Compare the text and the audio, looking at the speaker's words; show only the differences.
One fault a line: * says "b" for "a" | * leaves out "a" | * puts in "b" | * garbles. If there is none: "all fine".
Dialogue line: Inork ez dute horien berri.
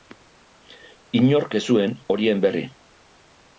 * says "zuen" for "dute"